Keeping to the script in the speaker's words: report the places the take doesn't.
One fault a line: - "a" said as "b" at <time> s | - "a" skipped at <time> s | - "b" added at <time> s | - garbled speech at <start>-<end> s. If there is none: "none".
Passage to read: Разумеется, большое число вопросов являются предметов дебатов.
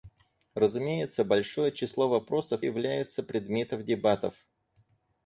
none